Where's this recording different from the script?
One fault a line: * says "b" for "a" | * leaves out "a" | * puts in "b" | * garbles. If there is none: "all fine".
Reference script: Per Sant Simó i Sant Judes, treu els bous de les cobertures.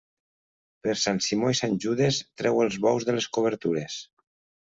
all fine